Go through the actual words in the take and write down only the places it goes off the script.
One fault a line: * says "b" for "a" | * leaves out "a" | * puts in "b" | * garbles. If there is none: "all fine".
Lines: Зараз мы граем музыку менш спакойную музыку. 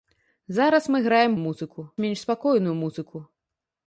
all fine